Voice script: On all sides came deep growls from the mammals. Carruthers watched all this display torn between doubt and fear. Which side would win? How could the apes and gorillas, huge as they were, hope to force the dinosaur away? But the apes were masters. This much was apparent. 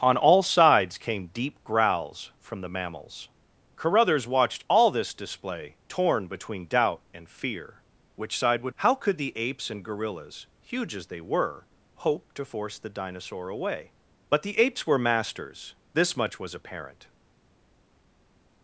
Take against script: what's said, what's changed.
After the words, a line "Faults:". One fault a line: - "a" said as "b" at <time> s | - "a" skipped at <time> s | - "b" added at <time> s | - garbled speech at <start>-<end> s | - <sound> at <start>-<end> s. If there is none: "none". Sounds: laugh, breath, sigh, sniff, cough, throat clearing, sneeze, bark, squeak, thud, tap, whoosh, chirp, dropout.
On all sides came deep growls from the mammals. Carruthers watched all this display torn between doubt and fear. Which side would? How could the apes and gorillas, huge as they were, hope to force the dinosaur away? But the apes were masters. This much was apparent.
Faults:
- "win" skipped at 8.8 s